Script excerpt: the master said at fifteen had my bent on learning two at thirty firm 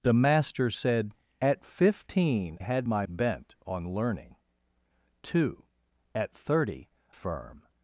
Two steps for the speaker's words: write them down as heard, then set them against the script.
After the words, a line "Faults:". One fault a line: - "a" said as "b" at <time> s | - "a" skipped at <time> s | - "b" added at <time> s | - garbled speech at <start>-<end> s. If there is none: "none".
the master said at fifteen had my bent on learning two at thirty firm
Faults:
none